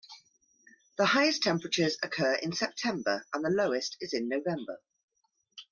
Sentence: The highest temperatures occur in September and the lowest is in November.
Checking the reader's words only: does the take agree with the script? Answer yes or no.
yes